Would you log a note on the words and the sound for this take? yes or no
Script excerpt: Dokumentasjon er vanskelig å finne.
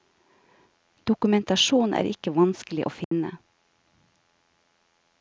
yes